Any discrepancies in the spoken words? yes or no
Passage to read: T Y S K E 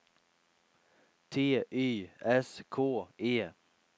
no